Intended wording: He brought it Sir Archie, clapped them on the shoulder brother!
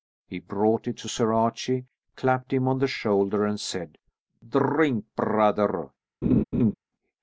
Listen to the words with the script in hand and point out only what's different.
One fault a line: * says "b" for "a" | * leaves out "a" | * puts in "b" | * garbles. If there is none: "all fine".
* puts in "to"
* says "him" for "them"
* puts in "and said Drink"